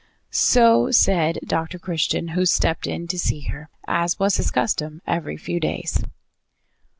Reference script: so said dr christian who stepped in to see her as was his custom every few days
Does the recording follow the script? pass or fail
pass